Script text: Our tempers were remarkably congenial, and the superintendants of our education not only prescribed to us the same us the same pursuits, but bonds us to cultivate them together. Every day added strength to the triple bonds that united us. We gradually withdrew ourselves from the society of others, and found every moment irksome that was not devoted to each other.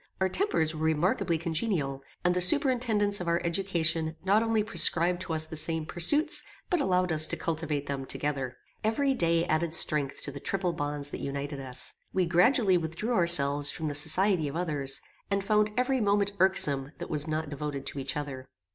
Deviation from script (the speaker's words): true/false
true